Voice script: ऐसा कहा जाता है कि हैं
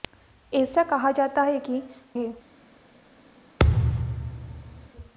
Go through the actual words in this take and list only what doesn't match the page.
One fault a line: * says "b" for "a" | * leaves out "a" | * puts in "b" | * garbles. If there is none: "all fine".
all fine